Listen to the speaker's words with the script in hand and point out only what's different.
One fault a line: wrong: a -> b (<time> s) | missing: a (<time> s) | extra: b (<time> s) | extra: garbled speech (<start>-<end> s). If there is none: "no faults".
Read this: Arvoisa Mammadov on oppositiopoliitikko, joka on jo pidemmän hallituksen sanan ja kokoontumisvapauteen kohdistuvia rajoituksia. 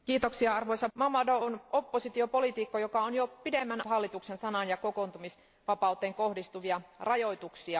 no faults